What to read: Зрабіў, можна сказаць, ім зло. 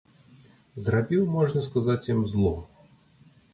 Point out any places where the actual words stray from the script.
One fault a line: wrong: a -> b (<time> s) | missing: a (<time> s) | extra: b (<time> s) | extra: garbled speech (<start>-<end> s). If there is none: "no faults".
no faults